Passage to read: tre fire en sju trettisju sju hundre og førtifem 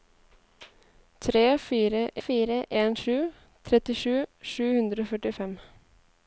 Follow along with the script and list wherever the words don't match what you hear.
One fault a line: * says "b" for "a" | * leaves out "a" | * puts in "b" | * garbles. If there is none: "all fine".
* puts in "fire"